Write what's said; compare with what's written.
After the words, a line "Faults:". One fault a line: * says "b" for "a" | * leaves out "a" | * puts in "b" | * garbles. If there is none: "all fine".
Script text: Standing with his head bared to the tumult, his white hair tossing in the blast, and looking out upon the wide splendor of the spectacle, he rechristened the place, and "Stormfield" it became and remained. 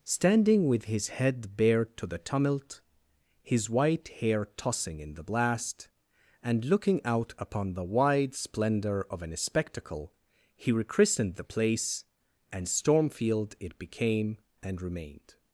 Standing with his head bared to the tumult, his white hair tossing in the blast, and looking out upon the wide splendor of an spectacle, he rechristened the place, and "Stormfield" it became and remained.
Faults:
* says "an" for "the"